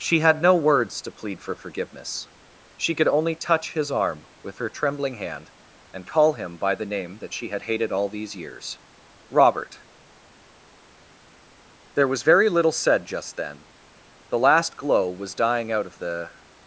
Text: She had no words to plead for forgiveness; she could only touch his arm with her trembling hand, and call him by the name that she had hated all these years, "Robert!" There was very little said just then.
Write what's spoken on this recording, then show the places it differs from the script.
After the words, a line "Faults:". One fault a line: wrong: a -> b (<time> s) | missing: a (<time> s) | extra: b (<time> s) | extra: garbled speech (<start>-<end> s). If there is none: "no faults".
She had no words to plead for forgiveness; she could only touch his arm with her trembling hand, and call him by the name that she had hated all these years, "Robert!" There was very little said just then. The last glow was dying out of the
Faults:
extra: The last glow was dying out of the (14.3 s)